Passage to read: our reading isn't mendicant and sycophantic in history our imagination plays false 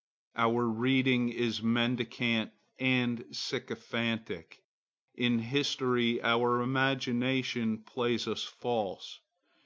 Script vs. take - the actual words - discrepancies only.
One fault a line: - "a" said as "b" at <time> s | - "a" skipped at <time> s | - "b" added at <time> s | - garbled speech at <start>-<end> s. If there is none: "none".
- "isn't" said as "is" at 1.3 s
- "us" added at 8.3 s